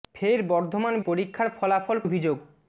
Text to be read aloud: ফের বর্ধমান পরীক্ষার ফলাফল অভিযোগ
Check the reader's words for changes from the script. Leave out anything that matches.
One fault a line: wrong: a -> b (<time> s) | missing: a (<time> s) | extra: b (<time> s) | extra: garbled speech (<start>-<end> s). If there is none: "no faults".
no faults